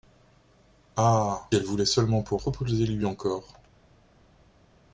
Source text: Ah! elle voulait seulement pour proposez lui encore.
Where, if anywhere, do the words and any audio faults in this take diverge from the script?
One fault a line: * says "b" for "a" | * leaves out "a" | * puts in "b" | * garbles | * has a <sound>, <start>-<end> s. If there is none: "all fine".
all fine